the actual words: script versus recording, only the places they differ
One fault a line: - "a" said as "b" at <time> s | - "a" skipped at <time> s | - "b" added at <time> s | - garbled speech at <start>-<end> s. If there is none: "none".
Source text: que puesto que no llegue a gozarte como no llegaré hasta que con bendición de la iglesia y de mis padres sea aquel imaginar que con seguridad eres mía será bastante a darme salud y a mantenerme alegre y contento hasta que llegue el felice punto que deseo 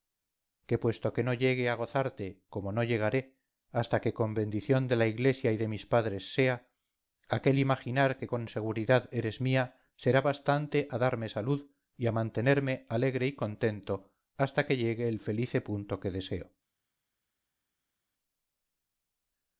none